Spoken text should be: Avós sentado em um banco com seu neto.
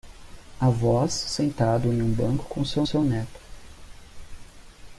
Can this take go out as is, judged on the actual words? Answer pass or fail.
fail